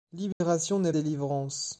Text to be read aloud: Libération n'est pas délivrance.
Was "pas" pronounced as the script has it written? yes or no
no